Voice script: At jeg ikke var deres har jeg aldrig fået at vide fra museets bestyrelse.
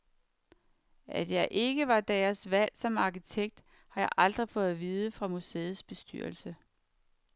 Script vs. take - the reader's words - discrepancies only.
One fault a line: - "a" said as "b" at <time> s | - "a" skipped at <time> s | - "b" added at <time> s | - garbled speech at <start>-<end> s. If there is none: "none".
- "valg som arkitekt" added at 2.5 s